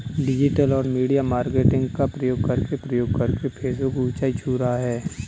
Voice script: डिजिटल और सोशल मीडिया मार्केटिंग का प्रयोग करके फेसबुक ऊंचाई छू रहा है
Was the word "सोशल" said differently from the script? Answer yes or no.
yes